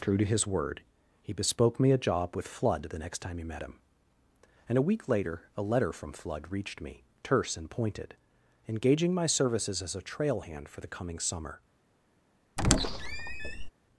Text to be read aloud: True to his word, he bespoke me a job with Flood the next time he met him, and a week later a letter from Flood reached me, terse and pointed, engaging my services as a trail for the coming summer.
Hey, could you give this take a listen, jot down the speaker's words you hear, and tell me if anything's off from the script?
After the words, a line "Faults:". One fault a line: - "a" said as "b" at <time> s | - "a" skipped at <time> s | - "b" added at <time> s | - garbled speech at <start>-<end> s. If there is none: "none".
True to his word, he bespoke me a job with Flood the next time he met him, and a week later a letter from Flood reached me, terse and pointed, engaging my services as a trail hand for the coming summer.
Faults:
- "hand" added at 10.4 s